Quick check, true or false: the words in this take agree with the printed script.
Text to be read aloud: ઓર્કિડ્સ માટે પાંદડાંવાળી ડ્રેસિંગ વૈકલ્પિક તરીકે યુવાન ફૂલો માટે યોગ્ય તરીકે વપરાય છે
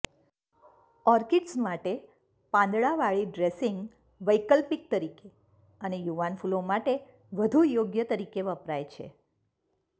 false